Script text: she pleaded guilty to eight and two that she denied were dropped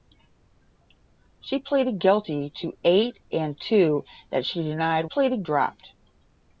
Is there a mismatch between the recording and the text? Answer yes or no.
yes